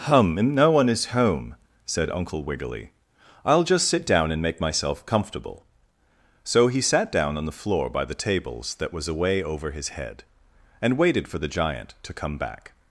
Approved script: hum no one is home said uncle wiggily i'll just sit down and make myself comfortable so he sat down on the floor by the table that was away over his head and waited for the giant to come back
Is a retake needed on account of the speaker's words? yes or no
yes